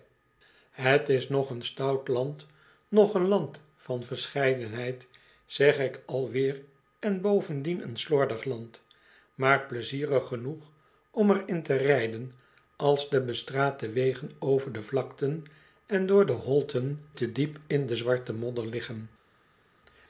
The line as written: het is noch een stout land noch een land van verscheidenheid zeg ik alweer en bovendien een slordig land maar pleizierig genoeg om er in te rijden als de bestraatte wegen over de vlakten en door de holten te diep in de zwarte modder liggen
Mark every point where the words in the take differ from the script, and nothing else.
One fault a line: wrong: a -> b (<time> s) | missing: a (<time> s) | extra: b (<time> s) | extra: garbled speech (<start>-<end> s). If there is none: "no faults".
no faults